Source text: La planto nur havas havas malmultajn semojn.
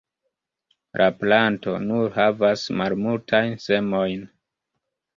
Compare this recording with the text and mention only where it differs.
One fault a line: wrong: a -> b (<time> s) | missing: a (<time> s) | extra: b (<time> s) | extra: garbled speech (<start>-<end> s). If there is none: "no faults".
missing: havas (2.6 s)